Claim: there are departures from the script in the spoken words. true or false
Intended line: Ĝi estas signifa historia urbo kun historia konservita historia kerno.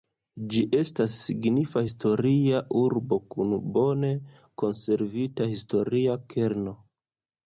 true